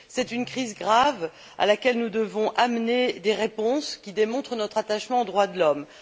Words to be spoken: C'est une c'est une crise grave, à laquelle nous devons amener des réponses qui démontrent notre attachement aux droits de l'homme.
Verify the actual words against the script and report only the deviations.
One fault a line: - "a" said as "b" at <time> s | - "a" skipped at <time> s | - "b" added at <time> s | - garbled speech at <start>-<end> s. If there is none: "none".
- "c'est une" skipped at 0.5 s